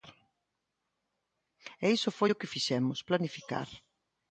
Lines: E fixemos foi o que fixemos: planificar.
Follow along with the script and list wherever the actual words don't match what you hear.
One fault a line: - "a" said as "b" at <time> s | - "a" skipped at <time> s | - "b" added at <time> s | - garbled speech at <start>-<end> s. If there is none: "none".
- "fixemos" said as "iso" at 2.0 s